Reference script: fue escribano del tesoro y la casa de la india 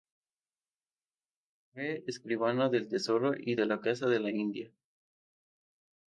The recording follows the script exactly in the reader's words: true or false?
false